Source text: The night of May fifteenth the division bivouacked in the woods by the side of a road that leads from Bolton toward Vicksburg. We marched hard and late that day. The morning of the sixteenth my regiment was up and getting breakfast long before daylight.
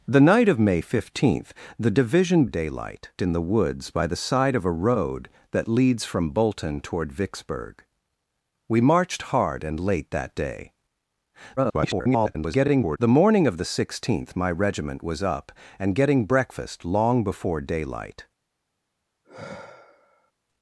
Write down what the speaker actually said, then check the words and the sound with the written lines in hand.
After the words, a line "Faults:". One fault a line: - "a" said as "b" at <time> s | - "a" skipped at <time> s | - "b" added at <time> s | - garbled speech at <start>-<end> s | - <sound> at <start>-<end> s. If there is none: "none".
The night of May fifteenth the division daylight in the woods by the side of a road that leads from Bolton toward Vicksburg. We marched hard and late that day. [garbled] The morning of the sixteenth my regiment was up and getting breakfast long before daylight.
Faults:
- "bivouacked" said as "daylight" at 2.4 s
- garbled speech at 11.6-13.0 s
- sigh at 19.2-20.3 s